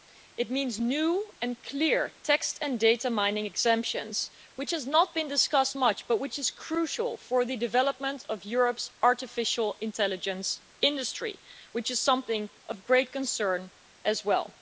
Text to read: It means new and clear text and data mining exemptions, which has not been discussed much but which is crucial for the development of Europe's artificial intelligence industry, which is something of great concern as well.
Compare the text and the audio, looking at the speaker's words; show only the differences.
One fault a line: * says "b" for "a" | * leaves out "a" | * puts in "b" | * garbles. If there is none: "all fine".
all fine